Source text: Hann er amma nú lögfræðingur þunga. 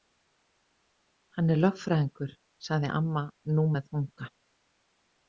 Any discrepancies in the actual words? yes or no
yes